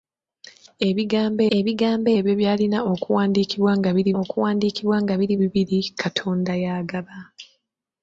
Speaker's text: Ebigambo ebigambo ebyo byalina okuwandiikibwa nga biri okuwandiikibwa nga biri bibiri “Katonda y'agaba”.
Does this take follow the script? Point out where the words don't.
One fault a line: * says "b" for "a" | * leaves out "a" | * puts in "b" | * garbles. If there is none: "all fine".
all fine